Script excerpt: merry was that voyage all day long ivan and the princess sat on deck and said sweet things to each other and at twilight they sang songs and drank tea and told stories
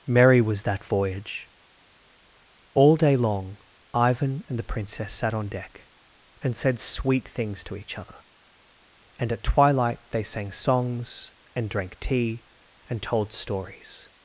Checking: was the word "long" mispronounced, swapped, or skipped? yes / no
no